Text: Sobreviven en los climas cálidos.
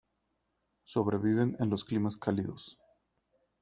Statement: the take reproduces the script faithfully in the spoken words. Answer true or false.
true